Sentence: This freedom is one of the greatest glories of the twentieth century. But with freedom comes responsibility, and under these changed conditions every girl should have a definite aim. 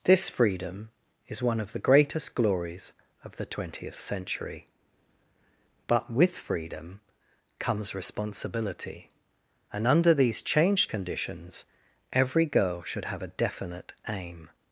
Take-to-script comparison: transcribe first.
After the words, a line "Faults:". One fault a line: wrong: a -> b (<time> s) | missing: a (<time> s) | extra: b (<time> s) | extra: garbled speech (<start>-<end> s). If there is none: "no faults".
This freedom is one of the greatest glories of the twentieth century. But with freedom comes responsibility, and under these changed conditions every girl should have a definite aim.
Faults:
no faults